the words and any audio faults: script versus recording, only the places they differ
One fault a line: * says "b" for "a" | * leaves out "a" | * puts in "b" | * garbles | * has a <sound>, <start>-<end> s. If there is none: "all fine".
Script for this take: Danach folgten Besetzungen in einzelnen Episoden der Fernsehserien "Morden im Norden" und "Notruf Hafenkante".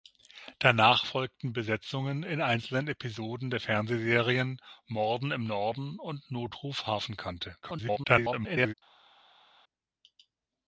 * garbles